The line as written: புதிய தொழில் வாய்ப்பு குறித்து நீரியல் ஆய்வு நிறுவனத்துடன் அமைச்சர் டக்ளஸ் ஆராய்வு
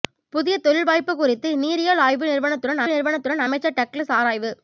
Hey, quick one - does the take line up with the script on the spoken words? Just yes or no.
no